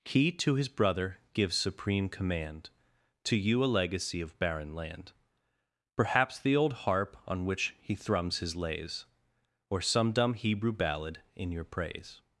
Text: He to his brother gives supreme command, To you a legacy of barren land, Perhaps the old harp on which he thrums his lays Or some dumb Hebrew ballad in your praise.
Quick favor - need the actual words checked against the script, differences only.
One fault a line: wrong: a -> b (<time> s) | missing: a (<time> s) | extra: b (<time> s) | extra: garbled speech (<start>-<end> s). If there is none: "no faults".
no faults